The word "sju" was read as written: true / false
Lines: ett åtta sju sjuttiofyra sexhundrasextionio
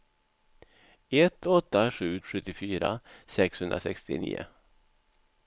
true